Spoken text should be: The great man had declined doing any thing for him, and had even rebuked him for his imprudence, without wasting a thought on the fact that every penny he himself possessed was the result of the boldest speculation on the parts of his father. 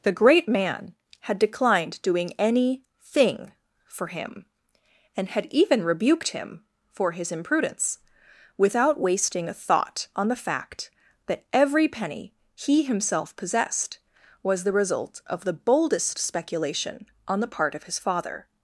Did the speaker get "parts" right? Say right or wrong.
wrong